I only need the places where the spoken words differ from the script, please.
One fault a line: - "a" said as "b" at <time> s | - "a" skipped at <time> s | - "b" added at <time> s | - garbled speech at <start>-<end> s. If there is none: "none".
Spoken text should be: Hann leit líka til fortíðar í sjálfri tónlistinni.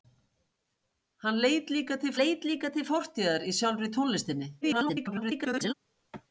- "leit líka til" added at 2.2 s
- garbled speech at 4.6-5.7 s